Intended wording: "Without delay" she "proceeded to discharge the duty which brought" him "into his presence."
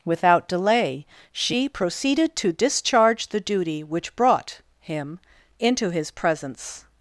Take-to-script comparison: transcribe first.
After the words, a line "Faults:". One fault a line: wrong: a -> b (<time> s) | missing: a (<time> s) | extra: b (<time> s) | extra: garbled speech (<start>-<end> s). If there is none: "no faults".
"Without delay" she "proceeded to discharge the duty which brought" him "into his presence."
Faults:
no faults